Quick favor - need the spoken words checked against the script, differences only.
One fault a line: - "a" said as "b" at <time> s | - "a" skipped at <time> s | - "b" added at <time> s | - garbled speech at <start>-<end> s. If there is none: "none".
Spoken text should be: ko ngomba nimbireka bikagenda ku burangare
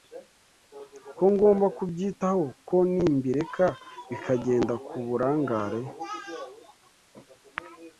- "kubyitaho ko" added at 1.8 s